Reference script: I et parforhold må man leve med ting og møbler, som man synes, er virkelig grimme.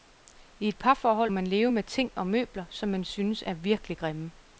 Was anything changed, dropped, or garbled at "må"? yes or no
yes